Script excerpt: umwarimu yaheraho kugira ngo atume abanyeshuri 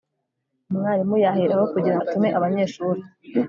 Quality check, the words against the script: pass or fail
fail